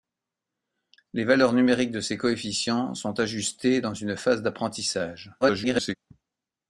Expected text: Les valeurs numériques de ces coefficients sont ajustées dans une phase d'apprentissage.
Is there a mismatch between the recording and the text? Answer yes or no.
yes